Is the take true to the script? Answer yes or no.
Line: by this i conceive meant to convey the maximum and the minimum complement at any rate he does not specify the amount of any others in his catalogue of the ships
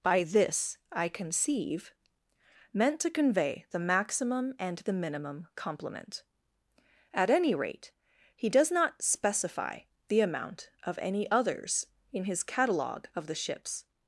yes